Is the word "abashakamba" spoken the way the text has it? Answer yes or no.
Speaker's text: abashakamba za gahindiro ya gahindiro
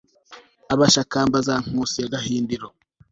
yes